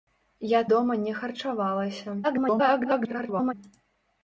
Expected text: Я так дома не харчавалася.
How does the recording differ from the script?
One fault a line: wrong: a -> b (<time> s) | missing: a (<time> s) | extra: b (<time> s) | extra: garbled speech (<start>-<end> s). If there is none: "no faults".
missing: так (0.6 s)
extra: garbled speech (2.2-3.5 s)